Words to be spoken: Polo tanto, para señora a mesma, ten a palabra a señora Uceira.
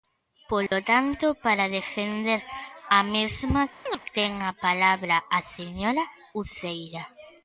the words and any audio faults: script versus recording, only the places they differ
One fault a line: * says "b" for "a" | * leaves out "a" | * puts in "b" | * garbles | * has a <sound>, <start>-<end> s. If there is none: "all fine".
* has a dropout, 0.7-0.7 s
* says "defender" for "señora"
* has a chirp, 3.9-4.0 s